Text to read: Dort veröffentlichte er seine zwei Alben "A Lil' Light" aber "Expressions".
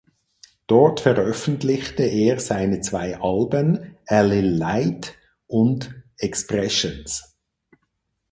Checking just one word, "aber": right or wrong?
wrong